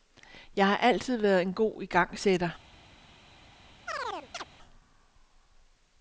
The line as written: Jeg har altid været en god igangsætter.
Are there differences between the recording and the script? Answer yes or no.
no